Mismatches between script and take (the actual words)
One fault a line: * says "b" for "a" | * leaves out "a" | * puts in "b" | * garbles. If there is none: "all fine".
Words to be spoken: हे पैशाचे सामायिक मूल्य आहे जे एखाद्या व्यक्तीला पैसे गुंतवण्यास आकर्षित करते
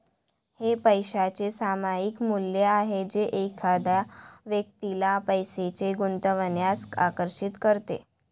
all fine